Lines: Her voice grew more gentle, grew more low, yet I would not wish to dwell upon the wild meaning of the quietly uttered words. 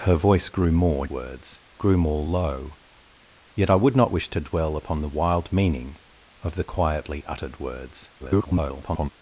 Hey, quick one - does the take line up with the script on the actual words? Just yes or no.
no